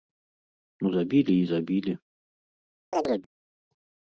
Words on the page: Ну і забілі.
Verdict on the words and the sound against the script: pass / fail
fail